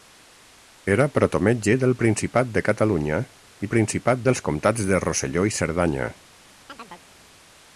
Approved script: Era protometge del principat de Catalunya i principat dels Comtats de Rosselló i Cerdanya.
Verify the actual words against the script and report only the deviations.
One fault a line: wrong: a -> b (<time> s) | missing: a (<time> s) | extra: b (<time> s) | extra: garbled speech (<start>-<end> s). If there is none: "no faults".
no faults